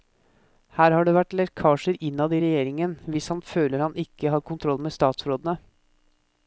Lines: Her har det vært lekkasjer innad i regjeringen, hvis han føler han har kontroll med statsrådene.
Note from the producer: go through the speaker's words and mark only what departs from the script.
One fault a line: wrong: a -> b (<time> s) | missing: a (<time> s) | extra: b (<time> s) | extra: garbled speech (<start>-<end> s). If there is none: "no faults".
extra: ikke (4.0 s)